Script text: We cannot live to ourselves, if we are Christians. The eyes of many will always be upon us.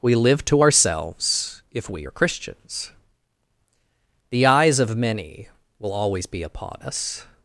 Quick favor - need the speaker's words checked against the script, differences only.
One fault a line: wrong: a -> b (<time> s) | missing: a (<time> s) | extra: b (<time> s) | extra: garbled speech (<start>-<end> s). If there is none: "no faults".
missing: cannot (0.1 s)